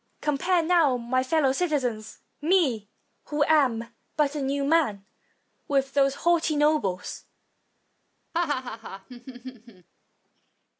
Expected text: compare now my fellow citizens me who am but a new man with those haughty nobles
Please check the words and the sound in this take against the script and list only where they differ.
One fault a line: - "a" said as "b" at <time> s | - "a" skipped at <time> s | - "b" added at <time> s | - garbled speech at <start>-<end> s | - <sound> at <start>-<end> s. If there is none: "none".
- laugh at 8.3-9.9 s